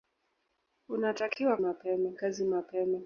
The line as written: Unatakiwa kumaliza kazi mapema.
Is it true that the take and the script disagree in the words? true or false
true